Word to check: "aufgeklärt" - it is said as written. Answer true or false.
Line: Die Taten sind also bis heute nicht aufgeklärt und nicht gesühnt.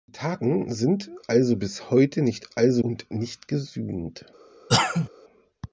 false